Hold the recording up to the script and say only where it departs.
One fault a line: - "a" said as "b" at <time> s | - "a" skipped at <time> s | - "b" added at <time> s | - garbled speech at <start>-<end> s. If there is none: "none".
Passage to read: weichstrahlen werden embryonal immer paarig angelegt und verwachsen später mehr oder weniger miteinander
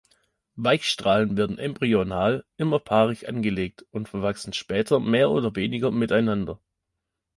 none